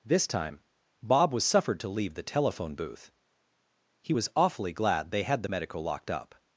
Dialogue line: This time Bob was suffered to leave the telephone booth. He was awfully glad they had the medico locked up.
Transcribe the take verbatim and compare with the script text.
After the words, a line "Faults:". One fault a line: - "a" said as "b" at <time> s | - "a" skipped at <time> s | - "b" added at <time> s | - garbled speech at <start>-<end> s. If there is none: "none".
This time Bob was suffered to leave the telephone booth. He was awfully glad they had the medico locked up.
Faults:
none